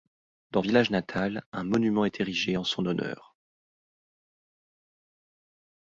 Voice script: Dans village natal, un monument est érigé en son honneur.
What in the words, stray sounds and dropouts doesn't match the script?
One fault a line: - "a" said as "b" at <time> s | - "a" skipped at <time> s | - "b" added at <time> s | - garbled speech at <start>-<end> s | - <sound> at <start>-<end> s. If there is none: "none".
none